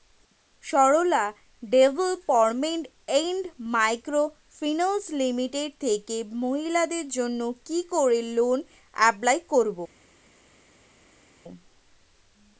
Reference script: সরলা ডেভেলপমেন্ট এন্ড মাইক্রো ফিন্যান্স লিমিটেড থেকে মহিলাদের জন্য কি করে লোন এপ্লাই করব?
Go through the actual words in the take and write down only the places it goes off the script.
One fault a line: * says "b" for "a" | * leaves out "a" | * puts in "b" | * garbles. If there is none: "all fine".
all fine